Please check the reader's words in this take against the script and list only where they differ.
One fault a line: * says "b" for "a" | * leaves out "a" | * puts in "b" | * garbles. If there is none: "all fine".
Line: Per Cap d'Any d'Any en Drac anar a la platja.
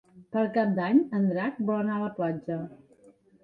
* leaves out "d'Any"
* puts in "vol"